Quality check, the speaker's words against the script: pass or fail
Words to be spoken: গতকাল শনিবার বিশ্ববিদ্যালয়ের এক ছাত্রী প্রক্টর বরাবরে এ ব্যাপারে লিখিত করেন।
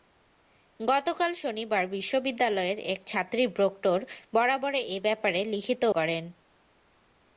pass